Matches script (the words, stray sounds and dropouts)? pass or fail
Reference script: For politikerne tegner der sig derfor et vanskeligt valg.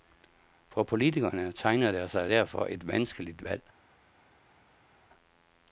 pass